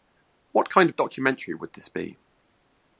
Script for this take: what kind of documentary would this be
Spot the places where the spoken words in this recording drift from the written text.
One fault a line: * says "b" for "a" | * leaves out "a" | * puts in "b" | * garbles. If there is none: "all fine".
all fine